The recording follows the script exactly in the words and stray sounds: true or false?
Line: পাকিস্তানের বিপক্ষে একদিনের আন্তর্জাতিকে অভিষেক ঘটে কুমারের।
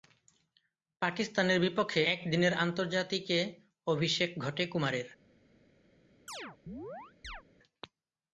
false